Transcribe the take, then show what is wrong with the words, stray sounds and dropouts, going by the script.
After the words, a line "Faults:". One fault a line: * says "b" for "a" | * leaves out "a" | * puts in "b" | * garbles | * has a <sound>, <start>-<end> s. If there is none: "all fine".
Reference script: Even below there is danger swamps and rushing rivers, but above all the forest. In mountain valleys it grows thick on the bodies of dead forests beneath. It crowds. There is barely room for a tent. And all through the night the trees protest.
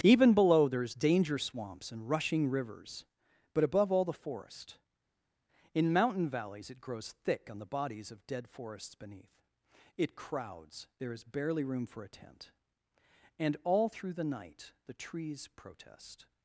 Even below there is danger swamps and rushing rivers, but above all the forest. In mountain valleys it grows thick on the bodies of dead forests beneath. It crowds. There is barely room for a tent. And all through the night the trees protest.
Faults:
all fine